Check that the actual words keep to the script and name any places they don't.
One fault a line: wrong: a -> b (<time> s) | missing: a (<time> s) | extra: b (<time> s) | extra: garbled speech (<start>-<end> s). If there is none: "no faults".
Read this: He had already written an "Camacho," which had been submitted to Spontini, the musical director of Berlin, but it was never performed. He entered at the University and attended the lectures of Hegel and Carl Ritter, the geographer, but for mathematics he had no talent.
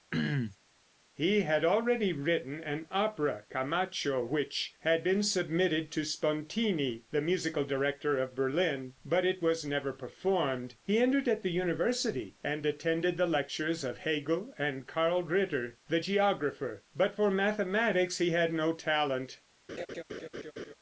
extra: opera (2.9 s)